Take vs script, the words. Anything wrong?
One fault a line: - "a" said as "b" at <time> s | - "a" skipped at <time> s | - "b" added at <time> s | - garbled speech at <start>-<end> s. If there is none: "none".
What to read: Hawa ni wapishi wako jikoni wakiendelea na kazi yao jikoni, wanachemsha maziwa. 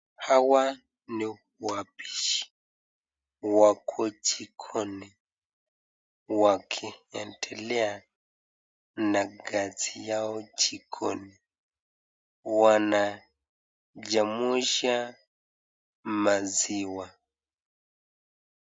none